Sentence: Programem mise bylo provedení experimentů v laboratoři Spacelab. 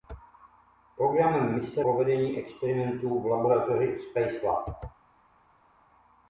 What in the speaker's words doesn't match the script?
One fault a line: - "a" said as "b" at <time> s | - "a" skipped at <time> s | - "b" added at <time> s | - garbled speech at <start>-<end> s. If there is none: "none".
- "bylo" skipped at 1.8 s